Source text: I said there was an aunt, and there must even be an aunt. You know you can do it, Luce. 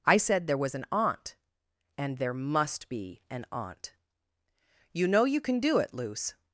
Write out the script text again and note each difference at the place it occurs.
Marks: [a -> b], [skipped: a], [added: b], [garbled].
I said there was an aunt, and there must [skipped: even] be an aunt. You know you can do it, Luce.